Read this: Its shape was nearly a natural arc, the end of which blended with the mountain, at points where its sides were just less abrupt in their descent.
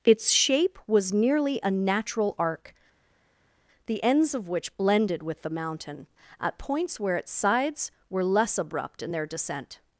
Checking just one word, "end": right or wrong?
wrong